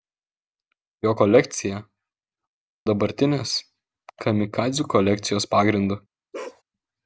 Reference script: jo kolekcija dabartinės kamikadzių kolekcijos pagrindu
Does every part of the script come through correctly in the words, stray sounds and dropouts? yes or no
no